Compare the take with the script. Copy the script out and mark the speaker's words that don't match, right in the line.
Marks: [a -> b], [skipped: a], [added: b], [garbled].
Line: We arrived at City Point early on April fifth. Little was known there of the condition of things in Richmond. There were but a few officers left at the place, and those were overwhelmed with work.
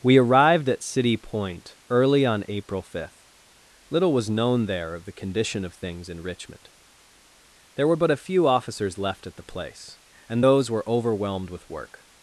We arrived at City Point early on April fifth. Little was known there of the condition of things in Richmond. There were but a few officers left at the place, and those were overwhelmed with work.